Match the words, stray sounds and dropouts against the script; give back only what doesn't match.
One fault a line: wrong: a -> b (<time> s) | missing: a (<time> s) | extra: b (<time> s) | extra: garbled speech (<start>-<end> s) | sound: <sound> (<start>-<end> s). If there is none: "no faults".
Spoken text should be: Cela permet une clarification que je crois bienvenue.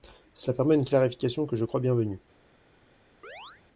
sound: chirp (3.2-3.6 s)